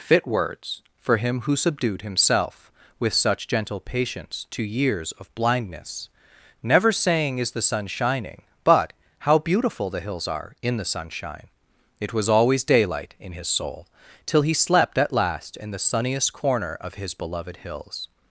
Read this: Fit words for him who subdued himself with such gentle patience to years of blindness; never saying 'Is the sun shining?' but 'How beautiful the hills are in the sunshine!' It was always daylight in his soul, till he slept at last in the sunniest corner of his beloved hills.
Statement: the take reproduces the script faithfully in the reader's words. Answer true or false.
true